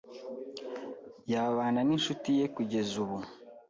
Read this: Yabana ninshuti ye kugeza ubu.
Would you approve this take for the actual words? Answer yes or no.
yes